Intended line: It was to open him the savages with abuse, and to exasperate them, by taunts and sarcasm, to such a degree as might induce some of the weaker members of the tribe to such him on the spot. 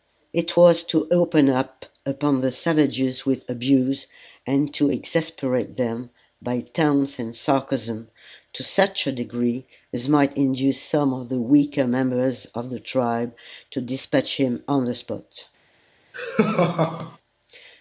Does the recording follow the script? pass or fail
fail